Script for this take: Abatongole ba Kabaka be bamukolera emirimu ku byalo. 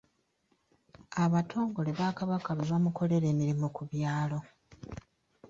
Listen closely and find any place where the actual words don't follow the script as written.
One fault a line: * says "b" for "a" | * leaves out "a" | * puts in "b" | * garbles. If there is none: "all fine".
all fine